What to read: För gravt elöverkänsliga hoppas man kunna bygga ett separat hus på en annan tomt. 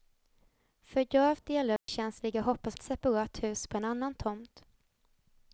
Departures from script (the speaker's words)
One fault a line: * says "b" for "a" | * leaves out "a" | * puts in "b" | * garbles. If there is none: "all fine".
* leaves out "man kunna bygga"